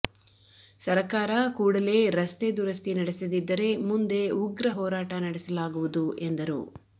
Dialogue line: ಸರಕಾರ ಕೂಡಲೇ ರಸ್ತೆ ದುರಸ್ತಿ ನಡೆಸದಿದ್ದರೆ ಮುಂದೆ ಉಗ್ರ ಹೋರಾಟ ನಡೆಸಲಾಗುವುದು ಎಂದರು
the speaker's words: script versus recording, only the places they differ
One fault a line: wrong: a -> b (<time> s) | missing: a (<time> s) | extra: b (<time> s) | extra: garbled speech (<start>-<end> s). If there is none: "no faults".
no faults